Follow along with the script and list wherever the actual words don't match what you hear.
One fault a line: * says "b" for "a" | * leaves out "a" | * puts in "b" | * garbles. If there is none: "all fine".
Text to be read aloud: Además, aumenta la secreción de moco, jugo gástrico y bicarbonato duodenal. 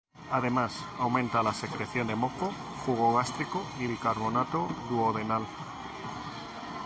all fine